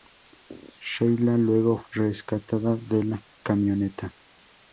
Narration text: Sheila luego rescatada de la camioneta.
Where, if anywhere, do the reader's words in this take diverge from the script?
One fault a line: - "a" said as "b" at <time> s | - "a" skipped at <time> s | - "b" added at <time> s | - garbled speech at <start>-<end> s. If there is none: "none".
none